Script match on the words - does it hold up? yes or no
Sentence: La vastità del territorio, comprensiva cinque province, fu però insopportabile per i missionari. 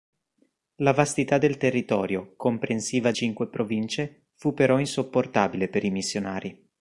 yes